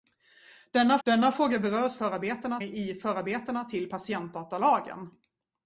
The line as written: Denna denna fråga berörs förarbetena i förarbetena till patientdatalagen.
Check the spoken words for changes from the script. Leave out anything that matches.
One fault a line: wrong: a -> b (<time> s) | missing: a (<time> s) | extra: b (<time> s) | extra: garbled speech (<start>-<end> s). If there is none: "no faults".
no faults